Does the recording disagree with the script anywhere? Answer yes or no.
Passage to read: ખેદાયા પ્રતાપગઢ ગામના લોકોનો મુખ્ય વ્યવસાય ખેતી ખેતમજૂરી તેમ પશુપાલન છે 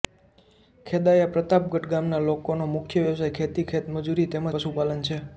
no